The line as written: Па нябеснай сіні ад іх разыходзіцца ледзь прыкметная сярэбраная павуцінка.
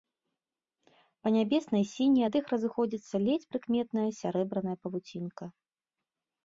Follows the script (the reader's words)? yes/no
yes